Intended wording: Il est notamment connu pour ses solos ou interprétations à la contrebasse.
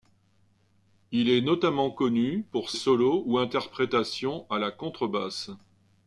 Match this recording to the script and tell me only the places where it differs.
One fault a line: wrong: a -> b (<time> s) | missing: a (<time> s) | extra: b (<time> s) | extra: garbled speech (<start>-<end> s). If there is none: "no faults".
missing: ses (2.7 s)